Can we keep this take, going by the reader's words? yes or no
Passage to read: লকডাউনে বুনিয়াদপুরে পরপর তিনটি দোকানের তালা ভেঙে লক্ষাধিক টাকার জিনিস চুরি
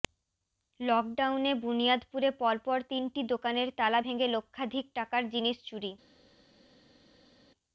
yes